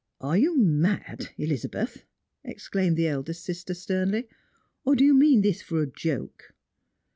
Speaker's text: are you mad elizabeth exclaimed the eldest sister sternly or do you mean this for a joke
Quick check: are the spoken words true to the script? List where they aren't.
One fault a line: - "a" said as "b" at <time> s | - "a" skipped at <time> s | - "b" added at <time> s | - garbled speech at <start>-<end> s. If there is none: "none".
none